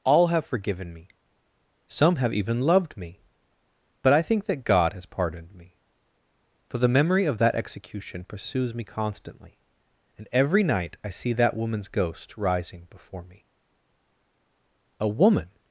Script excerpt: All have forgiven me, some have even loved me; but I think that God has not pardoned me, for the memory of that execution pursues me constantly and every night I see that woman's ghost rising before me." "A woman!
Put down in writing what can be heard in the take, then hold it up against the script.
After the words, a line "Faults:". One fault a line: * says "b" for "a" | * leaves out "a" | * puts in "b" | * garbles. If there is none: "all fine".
All have forgiven me, some have even loved me; but I think that God has pardoned me, for the memory of that execution pursues me constantly and every night I see that woman's ghost rising before me." "A woman!
Faults:
* leaves out "not"